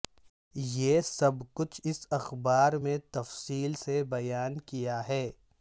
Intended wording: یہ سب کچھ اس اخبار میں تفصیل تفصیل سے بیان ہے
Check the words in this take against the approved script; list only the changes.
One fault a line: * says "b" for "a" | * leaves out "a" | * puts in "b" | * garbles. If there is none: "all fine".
* leaves out "تفصیل"
* puts in "کیا"